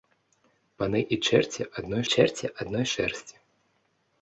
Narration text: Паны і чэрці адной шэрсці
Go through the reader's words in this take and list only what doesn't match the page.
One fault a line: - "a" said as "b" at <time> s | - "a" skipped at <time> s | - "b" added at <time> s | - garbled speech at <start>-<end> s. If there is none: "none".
- "чэрці адной" added at 2.1 s